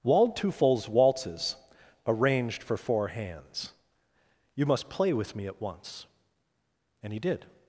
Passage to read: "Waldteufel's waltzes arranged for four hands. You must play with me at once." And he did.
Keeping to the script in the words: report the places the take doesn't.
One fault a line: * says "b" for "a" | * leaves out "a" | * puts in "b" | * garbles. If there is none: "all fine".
all fine